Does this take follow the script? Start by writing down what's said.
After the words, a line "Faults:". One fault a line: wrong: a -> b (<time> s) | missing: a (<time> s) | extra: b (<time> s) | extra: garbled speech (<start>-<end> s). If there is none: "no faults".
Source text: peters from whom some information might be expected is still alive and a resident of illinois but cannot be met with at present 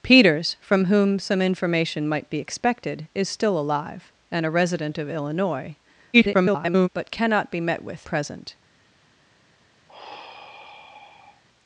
peters from whom some information might be expected is still alive and a resident of illinois [garbled] but cannot be met with present
Faults:
extra: garbled speech (6.1-6.9 s)
missing: at (8.1 s)